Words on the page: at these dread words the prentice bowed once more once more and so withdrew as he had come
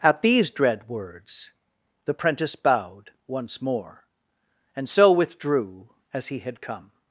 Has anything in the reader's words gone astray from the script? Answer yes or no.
yes